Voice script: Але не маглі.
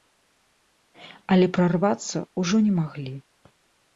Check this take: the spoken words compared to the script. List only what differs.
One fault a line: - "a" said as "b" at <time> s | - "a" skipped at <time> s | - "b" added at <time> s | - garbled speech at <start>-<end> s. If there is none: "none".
- "прарвацца ўжо" added at 1.6 s